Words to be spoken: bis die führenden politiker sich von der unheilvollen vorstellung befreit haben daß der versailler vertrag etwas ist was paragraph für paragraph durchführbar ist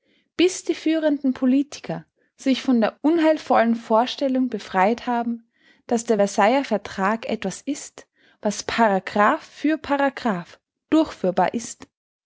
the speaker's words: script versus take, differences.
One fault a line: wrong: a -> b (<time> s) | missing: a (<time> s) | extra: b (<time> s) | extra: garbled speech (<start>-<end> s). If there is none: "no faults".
no faults